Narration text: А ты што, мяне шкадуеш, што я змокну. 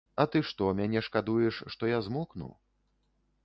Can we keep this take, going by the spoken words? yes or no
yes